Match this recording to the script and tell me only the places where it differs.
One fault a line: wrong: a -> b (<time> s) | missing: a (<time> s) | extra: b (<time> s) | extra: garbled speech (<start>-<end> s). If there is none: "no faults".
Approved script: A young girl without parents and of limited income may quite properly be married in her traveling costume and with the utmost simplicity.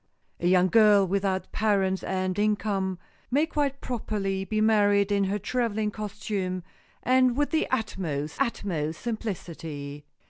missing: of limited (2.4 s)
extra: utmost (8.4 s)